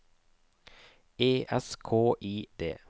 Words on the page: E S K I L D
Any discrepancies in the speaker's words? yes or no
yes